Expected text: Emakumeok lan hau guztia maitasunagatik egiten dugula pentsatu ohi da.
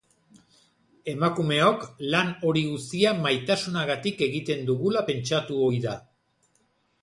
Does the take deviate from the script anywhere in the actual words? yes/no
yes